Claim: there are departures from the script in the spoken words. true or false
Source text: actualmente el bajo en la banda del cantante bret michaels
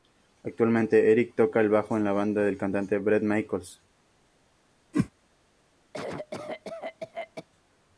true